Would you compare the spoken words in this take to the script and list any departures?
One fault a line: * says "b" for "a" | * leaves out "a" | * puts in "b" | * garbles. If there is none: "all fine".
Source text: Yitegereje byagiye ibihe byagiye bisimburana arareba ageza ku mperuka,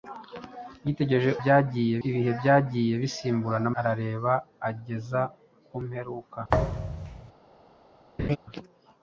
all fine